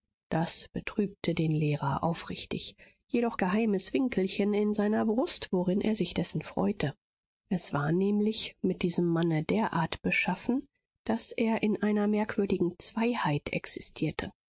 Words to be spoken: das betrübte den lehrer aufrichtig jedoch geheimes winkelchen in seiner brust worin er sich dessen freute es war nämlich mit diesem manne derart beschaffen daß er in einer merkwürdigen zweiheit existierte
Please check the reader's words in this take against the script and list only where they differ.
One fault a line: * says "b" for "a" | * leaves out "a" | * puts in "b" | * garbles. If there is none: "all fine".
all fine